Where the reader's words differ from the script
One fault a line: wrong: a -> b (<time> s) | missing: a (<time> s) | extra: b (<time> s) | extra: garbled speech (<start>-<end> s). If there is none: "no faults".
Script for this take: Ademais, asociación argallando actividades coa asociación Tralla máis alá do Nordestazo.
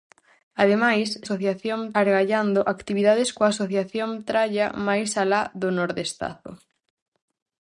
no faults